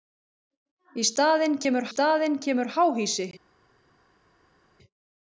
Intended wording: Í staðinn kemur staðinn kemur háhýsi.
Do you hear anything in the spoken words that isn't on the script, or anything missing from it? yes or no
no